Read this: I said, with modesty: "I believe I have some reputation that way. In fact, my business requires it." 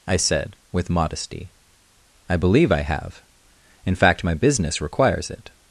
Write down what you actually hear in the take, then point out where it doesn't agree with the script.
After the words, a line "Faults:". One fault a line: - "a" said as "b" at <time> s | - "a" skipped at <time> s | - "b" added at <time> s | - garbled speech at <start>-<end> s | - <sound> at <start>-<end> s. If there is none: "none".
I said, with modesty: "I believe I have. In fact, my business requires it."
Faults:
- "some reputation that way" skipped at 3.2 s